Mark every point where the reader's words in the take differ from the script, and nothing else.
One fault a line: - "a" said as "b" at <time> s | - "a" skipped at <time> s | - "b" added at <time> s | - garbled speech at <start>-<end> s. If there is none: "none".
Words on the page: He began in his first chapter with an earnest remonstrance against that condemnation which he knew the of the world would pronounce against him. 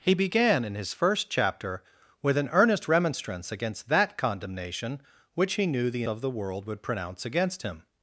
none